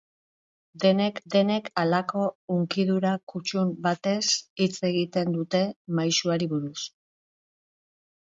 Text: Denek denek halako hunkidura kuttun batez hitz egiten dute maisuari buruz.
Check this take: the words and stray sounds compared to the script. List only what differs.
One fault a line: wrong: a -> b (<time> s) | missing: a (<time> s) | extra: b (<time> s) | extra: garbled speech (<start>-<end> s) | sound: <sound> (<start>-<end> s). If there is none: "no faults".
no faults